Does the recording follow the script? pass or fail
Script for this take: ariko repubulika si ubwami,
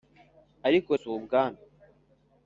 fail